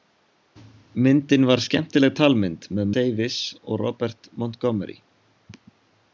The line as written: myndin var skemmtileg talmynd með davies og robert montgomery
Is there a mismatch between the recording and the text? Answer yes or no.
no